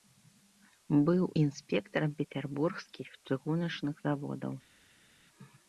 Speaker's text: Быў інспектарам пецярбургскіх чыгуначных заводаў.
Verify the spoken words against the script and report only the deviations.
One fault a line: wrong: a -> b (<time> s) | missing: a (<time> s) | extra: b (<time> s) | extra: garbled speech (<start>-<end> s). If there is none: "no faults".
no faults